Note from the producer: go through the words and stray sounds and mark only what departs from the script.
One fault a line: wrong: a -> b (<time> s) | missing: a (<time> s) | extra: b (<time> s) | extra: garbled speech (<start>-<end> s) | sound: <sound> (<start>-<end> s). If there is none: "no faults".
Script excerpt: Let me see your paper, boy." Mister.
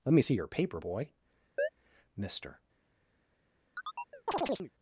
sound: chirp (1.6-1.7 s)
sound: chirp (3.7-4.7 s)